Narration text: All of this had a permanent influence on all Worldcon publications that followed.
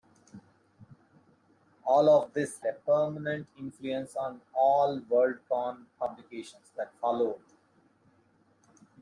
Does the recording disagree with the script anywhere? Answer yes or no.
yes